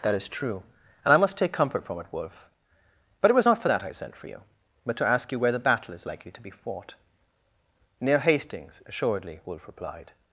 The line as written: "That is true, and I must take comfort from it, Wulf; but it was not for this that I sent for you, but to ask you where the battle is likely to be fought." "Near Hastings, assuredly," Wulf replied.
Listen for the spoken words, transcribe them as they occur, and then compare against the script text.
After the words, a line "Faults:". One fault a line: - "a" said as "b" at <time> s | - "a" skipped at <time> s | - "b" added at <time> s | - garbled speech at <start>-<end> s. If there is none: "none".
"That is true, and I must take comfort from it, Wulf; but it was not for that I sent for you, but to ask you where the battle is likely to be fought." "Near Hastings, assuredly," Wulf replied.
Faults:
- "this" skipped at 3.7 s